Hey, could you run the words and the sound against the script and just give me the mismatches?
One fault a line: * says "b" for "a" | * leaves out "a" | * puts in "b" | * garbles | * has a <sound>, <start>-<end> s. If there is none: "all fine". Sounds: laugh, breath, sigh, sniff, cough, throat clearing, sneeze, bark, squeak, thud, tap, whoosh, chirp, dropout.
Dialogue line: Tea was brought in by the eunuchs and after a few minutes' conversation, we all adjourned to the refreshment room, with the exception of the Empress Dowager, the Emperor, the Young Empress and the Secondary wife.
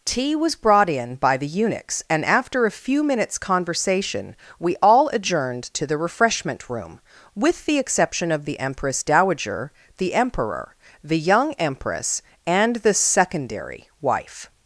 all fine